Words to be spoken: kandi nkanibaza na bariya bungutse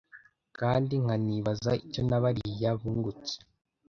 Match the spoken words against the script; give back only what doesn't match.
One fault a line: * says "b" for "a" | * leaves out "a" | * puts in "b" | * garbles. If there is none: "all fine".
* puts in "icyo"